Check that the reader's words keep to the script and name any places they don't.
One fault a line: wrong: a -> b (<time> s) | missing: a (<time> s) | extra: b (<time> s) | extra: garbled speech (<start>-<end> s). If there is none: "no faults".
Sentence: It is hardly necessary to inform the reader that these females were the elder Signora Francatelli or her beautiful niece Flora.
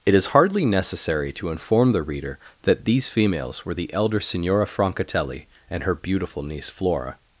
wrong: or -> and (5.7 s)